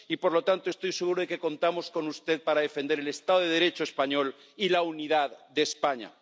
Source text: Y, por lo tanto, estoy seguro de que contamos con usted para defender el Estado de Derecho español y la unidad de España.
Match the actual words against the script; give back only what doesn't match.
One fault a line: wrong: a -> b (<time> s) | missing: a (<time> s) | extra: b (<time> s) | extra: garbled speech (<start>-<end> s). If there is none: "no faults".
no faults